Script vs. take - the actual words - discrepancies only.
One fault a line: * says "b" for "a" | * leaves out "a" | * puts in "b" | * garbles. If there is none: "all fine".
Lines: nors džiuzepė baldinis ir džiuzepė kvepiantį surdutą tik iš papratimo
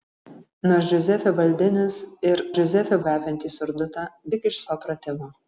all fine